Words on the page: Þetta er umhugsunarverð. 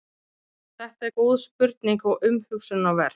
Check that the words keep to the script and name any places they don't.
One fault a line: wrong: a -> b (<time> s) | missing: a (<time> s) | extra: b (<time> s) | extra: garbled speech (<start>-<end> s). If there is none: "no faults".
extra: góð spurning og (1.2 s)